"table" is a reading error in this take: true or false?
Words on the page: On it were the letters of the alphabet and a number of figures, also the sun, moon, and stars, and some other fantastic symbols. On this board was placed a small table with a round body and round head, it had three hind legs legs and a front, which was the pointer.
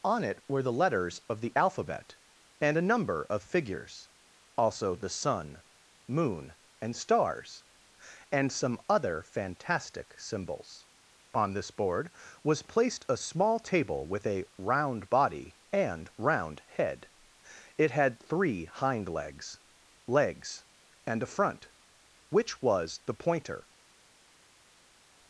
false